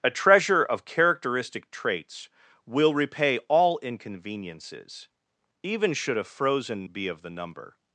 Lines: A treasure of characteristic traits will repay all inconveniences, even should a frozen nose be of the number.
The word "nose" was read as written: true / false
false